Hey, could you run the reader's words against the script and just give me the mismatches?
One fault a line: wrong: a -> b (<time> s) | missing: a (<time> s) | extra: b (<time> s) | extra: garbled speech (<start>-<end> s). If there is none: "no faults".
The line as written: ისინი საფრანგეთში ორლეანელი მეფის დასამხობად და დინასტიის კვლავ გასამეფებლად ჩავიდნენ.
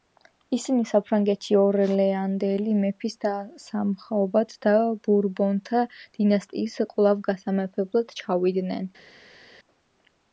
extra: ბურბონთა (5.1 s)